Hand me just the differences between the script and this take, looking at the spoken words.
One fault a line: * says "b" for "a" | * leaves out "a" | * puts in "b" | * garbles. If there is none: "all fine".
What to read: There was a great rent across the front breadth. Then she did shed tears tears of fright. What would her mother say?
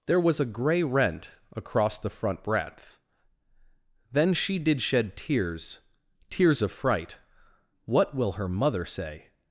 * says "grey" for "great"
* says "will" for "would"